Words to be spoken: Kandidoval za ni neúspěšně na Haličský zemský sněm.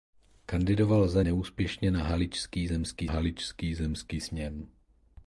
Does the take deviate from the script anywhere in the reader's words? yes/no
yes